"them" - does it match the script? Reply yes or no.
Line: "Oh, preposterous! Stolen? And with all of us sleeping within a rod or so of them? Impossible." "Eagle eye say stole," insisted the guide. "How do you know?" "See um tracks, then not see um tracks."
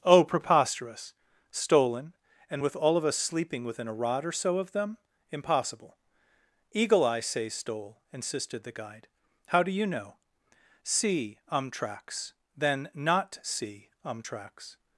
yes